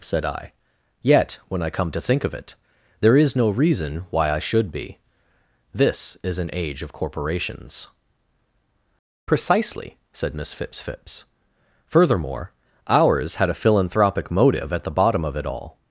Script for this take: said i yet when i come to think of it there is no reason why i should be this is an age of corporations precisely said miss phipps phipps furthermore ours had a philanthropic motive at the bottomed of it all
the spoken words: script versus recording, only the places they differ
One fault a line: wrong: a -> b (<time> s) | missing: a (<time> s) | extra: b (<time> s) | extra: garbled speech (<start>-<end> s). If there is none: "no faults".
wrong: bottomed -> bottom (14.9 s)